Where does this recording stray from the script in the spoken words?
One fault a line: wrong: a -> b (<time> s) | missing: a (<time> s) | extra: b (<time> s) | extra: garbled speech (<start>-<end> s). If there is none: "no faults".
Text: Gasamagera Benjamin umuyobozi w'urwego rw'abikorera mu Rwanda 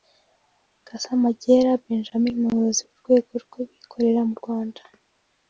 no faults